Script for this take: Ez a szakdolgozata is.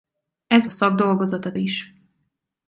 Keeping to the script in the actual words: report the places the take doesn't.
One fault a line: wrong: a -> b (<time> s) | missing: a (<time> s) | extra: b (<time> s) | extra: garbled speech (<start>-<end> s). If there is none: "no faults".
no faults